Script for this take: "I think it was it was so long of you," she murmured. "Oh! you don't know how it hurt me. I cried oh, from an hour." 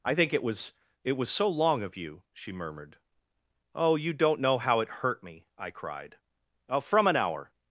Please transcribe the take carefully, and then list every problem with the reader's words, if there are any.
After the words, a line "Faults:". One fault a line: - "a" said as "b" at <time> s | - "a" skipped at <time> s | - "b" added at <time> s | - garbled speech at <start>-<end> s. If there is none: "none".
"I think it was it was so long of you," she murmured. "Oh! you don't know how it hurt me. I cried oh, from an hour."
Faults:
none